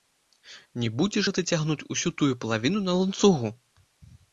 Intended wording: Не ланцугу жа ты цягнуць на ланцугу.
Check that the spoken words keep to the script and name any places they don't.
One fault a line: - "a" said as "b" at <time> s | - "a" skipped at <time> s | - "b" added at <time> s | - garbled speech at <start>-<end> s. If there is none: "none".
- "ланцугу" said as "будзеш" at 1.0 s
- "усю тую палавіну" added at 2.0 s